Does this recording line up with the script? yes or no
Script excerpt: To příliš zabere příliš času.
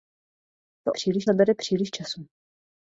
yes